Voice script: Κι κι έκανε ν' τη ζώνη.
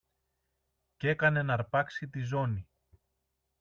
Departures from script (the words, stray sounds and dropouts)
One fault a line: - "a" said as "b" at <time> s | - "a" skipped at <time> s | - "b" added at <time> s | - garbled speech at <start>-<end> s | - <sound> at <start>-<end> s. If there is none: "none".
- "κι" skipped at 1.1 s
- "αρπάξει" added at 1.5 s